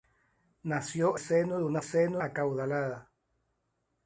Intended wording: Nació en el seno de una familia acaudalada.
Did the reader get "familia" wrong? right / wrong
wrong